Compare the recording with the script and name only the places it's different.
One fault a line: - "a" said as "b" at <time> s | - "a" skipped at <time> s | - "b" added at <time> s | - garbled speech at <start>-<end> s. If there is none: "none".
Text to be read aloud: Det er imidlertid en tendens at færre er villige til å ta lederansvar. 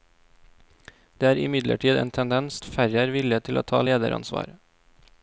none